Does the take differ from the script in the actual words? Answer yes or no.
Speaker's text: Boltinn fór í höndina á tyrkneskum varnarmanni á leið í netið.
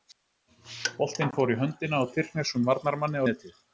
yes